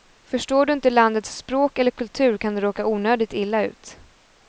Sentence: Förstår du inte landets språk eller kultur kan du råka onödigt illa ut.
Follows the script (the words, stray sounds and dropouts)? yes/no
yes